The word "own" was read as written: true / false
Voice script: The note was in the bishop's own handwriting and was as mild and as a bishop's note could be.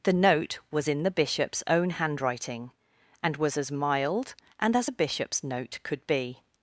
true